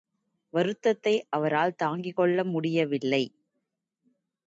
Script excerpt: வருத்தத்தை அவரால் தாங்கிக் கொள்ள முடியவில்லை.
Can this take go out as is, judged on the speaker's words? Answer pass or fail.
pass